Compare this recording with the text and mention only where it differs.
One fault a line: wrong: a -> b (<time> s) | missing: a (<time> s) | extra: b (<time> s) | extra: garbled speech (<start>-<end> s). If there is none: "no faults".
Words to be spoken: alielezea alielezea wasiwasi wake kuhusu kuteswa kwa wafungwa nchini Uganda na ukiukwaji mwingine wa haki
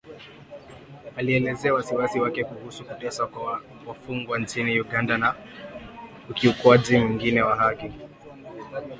missing: alielezea (1.7 s)